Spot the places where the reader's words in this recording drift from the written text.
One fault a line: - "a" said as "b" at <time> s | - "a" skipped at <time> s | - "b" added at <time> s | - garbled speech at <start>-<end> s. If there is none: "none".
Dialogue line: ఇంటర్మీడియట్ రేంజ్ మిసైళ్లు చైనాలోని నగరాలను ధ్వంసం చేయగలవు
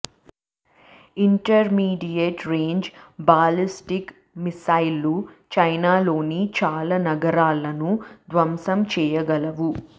- "బాలిస్టిక్" added at 3.2 s
- "చాలా" added at 6.6 s